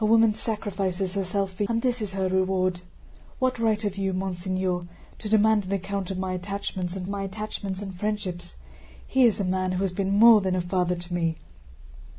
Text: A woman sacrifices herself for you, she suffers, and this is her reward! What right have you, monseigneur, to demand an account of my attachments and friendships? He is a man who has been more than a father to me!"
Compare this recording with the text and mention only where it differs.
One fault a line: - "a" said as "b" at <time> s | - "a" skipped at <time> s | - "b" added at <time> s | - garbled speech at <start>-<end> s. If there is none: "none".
- "you she suffers" skipped at 1.6 s
- "my attachments and" added at 7.1 s